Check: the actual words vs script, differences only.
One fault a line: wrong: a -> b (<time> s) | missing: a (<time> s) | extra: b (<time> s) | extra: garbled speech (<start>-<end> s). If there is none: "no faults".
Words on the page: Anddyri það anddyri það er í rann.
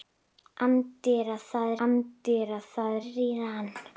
no faults